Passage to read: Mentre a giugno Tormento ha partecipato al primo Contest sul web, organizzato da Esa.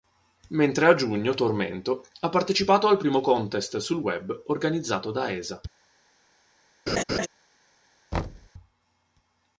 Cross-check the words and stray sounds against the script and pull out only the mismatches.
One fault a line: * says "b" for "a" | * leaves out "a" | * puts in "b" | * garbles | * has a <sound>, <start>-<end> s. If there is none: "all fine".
* has a laugh, 6.9-7.3 s
* has a thud, 8.1-8.5 s